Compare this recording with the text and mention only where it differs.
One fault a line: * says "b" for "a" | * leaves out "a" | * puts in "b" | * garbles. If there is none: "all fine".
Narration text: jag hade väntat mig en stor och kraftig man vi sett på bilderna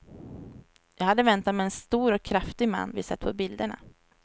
all fine